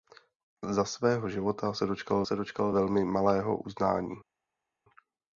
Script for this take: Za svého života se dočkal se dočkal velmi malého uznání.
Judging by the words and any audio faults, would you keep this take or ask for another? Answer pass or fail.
pass